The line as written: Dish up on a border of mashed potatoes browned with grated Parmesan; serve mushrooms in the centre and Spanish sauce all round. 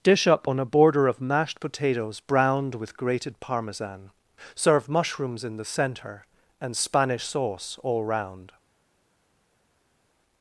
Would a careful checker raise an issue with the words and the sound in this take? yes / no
no